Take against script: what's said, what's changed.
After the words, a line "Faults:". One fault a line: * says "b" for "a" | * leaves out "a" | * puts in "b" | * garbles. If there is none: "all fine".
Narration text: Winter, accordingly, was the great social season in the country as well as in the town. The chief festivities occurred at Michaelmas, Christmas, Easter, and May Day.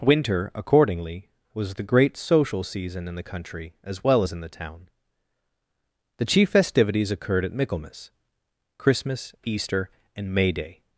Winter, accordingly, was the great social season in the country as well as in the town. The chief festivities occurred at Michaelmas, Christmas, Easter, and May Day.
Faults:
all fine